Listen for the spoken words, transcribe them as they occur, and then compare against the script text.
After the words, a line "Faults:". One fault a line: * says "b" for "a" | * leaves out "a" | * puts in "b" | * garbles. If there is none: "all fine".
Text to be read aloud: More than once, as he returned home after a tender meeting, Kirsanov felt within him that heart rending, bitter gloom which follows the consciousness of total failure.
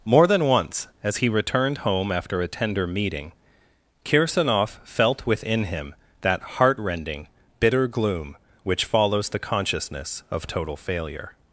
More than once, as he returned home after a tender meeting, Kirsanov felt within him that heart rending, bitter gloom which follows the consciousness of total failure.
Faults:
all fine